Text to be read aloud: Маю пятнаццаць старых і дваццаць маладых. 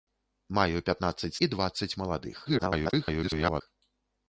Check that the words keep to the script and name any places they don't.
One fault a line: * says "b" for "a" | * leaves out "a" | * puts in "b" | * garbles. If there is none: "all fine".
* leaves out "старых"
* garbles